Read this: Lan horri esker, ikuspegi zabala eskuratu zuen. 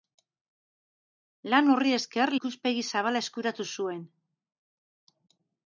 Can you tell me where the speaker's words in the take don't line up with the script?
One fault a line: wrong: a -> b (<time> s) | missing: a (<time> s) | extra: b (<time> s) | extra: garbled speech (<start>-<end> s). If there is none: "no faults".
no faults